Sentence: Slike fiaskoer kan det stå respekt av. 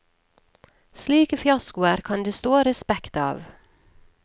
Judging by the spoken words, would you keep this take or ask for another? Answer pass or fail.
pass